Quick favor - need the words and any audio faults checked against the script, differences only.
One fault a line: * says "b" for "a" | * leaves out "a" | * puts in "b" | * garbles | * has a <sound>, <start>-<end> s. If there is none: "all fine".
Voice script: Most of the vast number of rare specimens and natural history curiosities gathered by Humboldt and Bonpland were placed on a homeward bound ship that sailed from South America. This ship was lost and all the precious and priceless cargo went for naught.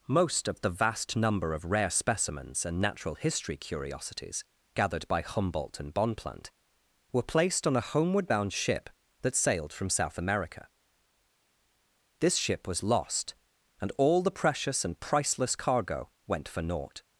all fine